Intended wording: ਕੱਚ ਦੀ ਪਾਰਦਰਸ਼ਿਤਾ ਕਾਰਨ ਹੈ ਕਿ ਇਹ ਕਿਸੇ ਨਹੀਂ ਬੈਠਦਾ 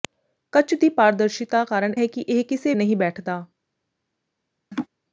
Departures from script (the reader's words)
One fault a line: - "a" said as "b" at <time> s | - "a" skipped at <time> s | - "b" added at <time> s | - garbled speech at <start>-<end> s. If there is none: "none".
none